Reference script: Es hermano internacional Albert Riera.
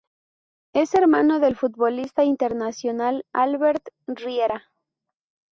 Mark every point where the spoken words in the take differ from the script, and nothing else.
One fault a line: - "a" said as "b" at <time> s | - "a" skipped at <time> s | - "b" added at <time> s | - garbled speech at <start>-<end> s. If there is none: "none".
- "del futbolista" added at 1.4 s